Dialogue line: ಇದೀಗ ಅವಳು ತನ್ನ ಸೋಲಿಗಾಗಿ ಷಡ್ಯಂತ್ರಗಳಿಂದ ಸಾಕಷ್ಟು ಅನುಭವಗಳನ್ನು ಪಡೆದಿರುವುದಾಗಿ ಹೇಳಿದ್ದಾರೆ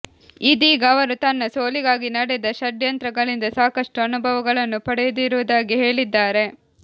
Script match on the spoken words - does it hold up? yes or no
no